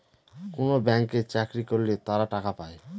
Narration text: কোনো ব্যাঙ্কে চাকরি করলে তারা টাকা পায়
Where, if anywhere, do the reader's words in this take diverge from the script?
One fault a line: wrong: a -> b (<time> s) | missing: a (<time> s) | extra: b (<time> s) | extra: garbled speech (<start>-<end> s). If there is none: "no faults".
no faults